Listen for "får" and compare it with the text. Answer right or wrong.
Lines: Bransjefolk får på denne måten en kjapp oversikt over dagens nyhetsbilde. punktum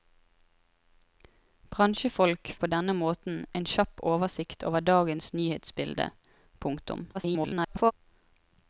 wrong